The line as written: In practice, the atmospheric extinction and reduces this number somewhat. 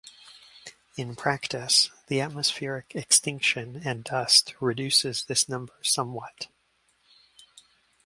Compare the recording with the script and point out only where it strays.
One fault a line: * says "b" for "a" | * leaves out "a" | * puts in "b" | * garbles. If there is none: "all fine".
* puts in "dust"